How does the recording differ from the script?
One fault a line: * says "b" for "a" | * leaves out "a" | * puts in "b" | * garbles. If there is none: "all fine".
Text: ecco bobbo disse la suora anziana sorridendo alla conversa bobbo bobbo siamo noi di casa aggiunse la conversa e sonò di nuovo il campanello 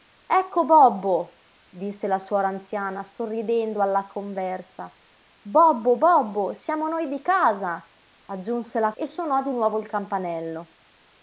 * leaves out "conversa"